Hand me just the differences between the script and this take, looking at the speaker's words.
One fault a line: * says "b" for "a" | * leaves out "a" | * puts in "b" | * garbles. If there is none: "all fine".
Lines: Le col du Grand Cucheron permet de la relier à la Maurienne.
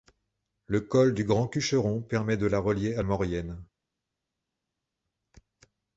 * leaves out "la"